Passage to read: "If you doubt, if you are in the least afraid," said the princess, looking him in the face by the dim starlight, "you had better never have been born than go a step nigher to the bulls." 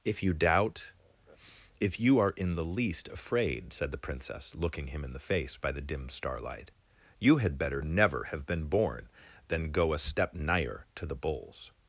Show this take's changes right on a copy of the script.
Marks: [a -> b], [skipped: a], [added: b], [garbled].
"If you doubt, if you are in the least afraid," said the princess, looking him in the face by the dim starlight, "you had better never have been born than go a step nigher to the bulls."